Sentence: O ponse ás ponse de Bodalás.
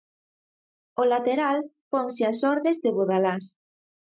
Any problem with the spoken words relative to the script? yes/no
yes